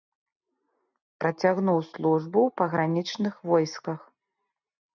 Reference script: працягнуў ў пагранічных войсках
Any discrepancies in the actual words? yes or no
yes